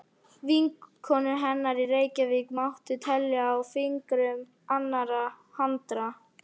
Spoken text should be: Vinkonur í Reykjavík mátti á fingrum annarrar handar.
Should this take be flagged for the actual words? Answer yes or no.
yes